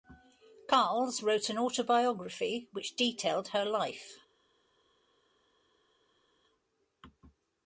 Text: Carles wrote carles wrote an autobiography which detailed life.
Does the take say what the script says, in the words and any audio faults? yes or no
no